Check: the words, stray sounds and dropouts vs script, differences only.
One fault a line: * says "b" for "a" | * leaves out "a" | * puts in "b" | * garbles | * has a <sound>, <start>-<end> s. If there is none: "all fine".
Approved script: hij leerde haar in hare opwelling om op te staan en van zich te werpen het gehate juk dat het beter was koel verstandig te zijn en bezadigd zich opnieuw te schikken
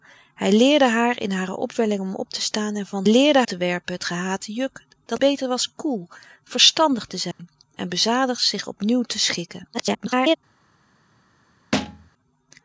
* says "leerde" for "zich"
* leaves out "het"
* has a dropout, 7.3-7.4 s
* garbles
* has a thud, 11.7-12.1 s